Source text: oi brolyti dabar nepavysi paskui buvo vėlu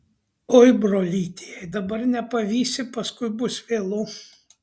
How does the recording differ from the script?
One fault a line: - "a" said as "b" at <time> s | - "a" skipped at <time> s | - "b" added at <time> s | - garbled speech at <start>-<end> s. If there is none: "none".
- "jei" added at 1.5 s
- "buvo" said as "bus" at 3.4 s